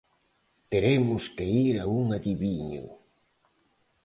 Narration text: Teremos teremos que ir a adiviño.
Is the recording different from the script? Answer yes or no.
yes